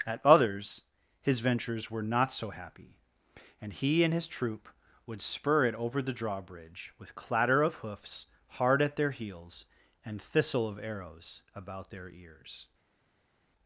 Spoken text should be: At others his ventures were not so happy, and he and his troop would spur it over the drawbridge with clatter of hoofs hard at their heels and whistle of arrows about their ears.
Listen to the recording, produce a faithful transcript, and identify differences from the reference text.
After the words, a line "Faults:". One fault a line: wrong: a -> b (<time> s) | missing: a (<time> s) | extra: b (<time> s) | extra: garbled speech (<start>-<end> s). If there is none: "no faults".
At others his ventures were not so happy, and he and his troop would spur it over the drawbridge with clatter of hoofs hard at their heels and thistle of arrows about their ears.
Faults:
wrong: whistle -> thistle (10.2 s)